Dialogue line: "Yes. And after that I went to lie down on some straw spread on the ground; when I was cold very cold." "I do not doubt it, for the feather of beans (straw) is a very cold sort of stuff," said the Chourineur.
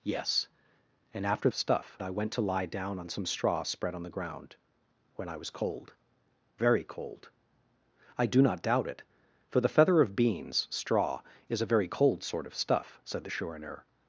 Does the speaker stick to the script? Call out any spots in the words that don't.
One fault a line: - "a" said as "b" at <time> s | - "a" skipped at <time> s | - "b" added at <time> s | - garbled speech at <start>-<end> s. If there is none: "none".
- "that" said as "stuff" at 1.5 s